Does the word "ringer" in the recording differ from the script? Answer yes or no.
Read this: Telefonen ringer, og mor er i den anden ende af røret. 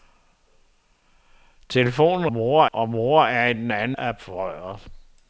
yes